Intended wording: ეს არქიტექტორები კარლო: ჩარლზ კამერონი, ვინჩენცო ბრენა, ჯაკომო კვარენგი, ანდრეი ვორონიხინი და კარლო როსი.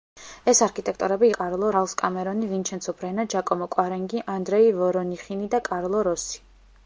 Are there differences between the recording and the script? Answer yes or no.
no